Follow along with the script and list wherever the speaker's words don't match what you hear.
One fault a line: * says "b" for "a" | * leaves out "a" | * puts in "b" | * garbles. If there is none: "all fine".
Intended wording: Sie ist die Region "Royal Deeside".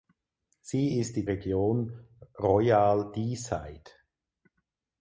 all fine